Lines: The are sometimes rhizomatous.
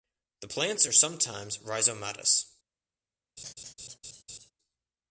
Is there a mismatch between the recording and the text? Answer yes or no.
yes